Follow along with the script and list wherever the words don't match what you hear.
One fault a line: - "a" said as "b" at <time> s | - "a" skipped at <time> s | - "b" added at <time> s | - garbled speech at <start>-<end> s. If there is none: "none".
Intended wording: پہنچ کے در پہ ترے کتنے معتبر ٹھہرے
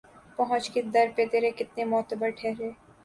none